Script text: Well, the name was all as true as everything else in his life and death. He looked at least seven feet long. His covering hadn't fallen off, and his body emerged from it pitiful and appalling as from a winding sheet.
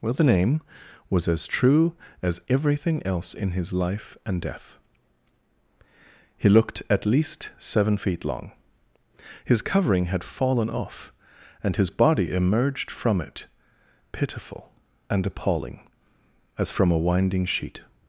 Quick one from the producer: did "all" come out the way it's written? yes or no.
no